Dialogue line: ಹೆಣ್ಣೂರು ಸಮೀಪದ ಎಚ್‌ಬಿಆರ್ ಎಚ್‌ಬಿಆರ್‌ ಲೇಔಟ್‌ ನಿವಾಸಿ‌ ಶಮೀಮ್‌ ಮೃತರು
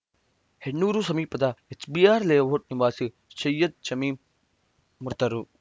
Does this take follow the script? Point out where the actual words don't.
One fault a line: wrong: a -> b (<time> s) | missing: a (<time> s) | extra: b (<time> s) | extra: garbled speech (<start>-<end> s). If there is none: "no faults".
missing: ಎಚ್‌ಬಿಆರ್ (2.2 s)
extra: ಸೈಯದ್ (3.4 s)